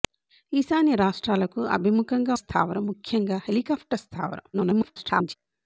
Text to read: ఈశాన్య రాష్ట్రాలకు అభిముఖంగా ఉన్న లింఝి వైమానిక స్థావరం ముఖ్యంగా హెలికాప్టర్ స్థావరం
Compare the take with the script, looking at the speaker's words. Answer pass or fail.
fail